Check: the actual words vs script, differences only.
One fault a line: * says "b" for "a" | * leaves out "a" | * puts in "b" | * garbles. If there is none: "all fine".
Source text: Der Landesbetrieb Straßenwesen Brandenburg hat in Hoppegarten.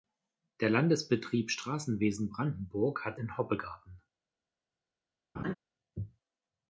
all fine